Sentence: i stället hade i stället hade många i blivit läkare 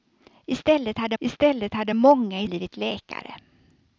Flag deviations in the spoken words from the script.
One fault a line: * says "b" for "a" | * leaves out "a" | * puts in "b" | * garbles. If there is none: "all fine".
all fine